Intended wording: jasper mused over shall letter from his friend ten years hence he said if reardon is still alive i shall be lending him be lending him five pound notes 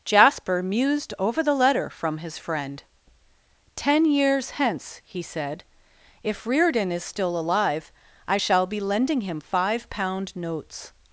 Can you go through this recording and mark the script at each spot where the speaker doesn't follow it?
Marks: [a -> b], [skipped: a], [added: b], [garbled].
jasper mused over [shall -> the] letter from his friend ten years hence he said if reardon is still alive i shall be lending him [skipped: be lending him] five pound notes